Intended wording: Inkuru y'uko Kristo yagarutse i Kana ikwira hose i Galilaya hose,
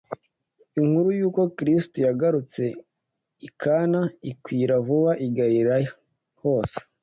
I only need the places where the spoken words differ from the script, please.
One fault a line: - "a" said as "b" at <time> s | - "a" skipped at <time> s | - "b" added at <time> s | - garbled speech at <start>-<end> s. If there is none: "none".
- "hose" said as "vuba" at 4.9 s